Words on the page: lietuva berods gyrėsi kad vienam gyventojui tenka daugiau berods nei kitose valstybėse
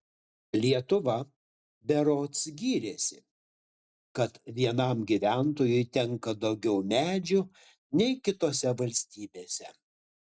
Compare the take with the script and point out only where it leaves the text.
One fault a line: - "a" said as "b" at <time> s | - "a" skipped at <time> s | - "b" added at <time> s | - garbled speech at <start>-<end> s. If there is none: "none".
- "berods" said as "medžių" at 6.9 s